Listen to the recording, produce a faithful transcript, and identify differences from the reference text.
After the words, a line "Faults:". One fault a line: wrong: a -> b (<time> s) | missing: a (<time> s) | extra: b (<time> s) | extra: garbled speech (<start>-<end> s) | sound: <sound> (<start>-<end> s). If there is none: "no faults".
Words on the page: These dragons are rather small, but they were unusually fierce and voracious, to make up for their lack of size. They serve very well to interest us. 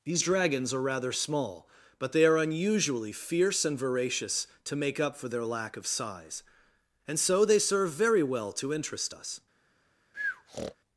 These dragons are rather small, but they are unusually fierce and voracious, to make up for their lack of size. And so they serve very well to interest us.
Faults:
wrong: were -> are (2.2 s)
extra: And so (7.1 s)
sound: breath (10.1-10.8 s)